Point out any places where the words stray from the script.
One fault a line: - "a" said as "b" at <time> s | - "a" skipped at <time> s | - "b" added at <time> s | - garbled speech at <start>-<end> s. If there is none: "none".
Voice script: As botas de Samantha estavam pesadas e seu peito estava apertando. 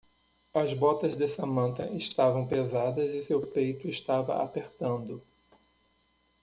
none